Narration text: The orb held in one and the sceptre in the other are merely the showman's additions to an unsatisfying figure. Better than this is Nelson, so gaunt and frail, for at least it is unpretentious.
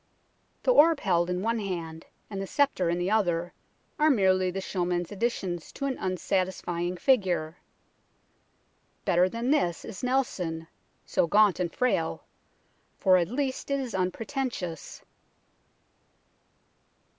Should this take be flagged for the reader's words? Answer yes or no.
yes